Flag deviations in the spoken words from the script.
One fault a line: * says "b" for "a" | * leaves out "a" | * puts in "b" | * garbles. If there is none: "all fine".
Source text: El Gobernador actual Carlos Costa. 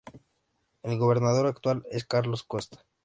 * puts in "es"